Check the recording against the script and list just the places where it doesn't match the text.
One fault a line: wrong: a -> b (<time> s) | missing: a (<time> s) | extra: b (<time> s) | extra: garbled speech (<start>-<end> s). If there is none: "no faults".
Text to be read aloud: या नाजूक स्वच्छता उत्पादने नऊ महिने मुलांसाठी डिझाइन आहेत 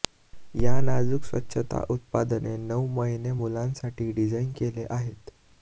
extra: केले (4.6 s)